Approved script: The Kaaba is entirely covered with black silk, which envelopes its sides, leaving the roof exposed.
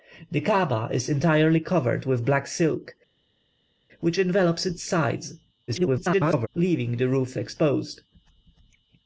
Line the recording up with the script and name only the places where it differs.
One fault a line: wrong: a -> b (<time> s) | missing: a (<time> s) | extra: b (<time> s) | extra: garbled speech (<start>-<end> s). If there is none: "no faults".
extra: garbled speech (5.7-6.5 s)